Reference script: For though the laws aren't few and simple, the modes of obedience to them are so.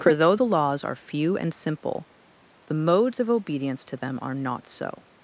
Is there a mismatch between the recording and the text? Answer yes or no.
yes